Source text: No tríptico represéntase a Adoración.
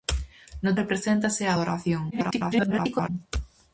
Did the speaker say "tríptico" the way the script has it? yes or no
no